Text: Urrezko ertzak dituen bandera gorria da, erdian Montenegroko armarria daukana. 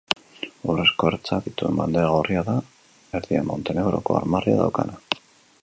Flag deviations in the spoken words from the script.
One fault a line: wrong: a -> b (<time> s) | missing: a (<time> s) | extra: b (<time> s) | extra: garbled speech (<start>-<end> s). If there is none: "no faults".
no faults